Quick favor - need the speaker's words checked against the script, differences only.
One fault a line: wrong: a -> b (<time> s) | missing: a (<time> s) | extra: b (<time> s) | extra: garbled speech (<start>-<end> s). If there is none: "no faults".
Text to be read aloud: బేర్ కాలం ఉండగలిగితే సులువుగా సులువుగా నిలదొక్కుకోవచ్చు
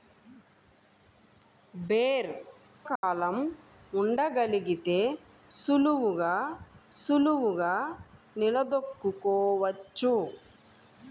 no faults